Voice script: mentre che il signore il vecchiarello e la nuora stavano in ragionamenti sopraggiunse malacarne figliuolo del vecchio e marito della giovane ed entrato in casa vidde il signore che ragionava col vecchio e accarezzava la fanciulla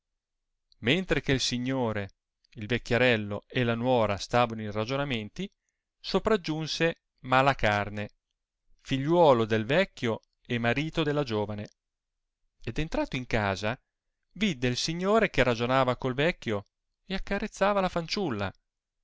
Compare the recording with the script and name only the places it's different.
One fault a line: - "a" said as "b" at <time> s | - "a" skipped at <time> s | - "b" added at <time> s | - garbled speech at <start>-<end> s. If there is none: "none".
none